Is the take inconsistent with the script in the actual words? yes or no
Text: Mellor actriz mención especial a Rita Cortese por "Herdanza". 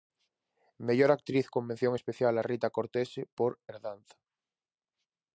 yes